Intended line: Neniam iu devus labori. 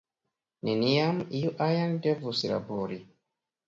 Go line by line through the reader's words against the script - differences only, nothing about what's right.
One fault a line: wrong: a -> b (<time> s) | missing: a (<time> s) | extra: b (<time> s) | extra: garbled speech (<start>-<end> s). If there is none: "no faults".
extra: ajn (1.7 s)